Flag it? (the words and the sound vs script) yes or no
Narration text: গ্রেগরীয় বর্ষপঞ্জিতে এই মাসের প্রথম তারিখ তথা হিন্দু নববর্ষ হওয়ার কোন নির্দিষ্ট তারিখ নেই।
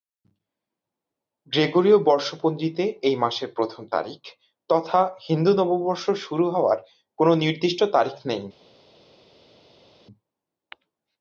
yes